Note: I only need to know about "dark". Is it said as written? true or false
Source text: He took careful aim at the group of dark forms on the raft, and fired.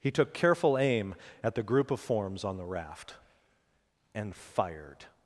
false